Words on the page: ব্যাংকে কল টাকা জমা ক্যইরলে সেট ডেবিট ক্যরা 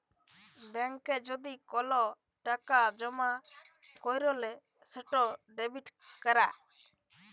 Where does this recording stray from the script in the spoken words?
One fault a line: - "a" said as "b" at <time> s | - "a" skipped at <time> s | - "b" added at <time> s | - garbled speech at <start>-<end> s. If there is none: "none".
- "যদি" added at 1.3 s